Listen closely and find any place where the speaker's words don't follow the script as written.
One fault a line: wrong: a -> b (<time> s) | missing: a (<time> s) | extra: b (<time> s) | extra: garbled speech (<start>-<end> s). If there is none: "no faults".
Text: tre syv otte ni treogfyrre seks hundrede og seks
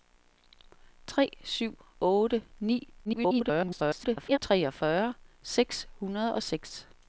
extra: garbled speech (3.0-4.4 s)